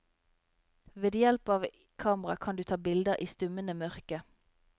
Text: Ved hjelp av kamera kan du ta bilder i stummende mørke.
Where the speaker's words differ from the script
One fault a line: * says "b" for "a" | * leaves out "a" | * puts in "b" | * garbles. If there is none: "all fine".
all fine